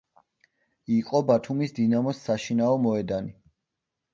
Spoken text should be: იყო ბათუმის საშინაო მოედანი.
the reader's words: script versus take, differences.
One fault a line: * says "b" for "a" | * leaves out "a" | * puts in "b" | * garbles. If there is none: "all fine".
* puts in "დინამოს"